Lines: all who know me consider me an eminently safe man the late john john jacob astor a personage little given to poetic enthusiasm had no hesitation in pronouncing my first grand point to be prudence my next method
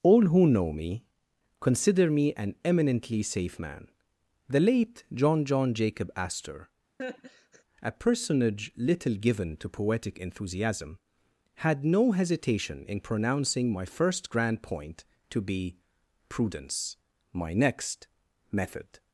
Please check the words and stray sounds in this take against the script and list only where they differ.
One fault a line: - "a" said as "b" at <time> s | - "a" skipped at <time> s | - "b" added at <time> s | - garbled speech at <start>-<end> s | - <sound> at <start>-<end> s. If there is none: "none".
- laugh at 7.0-7.6 s